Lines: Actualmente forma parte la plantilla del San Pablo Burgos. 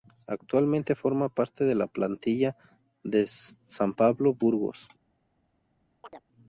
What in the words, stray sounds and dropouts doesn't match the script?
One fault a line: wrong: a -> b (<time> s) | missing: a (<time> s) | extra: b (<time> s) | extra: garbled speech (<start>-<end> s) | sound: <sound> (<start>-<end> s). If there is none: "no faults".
extra: de (1.6 s)
sound: chirp (6.0-6.2 s)